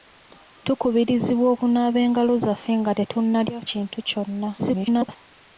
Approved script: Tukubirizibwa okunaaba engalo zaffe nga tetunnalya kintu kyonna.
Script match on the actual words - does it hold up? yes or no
no